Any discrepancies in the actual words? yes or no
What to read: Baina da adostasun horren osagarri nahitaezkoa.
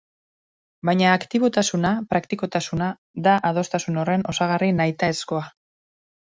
yes